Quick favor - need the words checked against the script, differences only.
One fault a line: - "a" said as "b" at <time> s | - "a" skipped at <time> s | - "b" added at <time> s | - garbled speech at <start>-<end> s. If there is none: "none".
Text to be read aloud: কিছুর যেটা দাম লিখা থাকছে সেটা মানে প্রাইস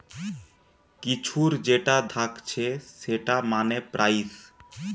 - "দাম লিখা" skipped at 1.9 s